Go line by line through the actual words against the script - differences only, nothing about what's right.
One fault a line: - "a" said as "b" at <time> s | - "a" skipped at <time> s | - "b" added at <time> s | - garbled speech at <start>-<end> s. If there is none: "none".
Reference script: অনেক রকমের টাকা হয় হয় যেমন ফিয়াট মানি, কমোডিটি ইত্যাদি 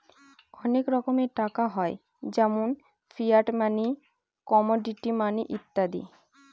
- "হয়" skipped at 1.9 s
- "মানি" added at 5.2 s